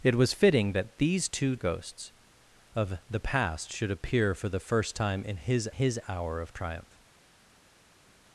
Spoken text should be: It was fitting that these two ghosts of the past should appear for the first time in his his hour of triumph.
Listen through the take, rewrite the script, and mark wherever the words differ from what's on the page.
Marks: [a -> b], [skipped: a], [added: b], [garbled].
It was fitting that these two ghosts of the past should appear for the first time in his his hour of triumph.